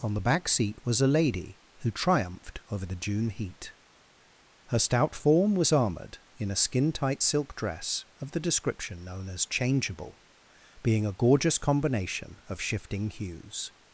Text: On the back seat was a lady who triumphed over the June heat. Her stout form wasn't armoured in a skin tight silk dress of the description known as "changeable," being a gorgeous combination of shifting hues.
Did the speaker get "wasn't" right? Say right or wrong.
wrong